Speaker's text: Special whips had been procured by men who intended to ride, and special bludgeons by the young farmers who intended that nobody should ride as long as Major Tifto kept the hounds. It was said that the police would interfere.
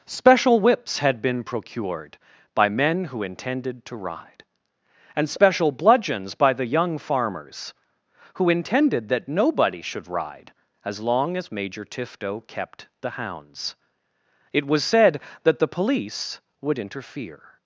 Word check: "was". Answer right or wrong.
right